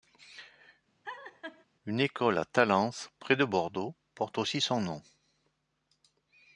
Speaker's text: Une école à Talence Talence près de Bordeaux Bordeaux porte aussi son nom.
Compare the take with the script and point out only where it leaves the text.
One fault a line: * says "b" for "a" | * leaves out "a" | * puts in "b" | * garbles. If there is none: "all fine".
* leaves out "Talence"
* leaves out "Bordeaux"